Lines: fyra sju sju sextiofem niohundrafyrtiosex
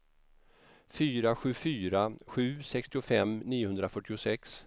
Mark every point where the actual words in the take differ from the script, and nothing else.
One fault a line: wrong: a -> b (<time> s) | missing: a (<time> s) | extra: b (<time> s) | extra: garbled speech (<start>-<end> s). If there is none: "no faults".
extra: fyra (1.6 s)